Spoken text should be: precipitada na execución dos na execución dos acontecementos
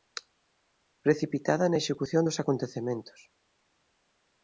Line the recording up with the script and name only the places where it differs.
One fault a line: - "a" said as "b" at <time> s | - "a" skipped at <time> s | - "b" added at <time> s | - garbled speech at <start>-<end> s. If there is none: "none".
- "na execución dos" skipped at 2.4 s